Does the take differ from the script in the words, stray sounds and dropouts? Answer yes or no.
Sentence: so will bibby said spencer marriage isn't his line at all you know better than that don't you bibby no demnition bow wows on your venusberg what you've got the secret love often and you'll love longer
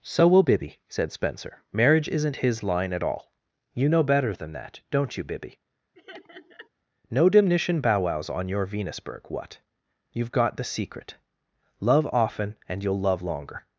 yes